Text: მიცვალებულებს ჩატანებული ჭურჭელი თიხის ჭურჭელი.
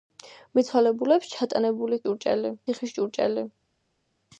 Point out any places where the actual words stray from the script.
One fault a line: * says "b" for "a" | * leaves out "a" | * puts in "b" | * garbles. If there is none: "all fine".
all fine